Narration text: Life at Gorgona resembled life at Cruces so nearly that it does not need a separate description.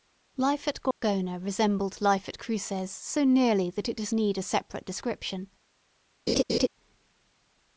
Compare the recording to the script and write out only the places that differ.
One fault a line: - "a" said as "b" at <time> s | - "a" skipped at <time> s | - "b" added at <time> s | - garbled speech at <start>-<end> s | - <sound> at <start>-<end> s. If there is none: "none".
- dropout at 0.9-1.0 s
- "not" skipped at 4.1 s
- laugh at 6.3-6.7 s